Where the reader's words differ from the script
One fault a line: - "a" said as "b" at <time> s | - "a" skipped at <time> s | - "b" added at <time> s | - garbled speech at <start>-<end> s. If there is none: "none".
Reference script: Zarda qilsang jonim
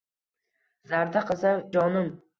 none